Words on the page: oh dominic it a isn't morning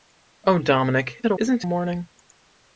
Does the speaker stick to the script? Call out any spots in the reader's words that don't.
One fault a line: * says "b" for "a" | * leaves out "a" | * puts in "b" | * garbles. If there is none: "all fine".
all fine